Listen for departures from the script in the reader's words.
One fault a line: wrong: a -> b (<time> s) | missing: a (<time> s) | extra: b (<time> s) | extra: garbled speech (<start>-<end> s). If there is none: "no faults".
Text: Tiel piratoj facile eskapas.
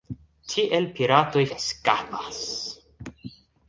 missing: facile (1.4 s)